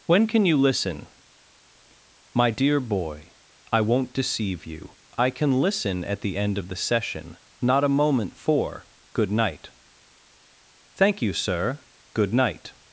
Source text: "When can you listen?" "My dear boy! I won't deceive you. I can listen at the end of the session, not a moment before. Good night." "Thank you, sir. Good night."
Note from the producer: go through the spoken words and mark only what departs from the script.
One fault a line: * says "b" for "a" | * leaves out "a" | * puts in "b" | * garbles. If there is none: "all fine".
* says "for" for "before"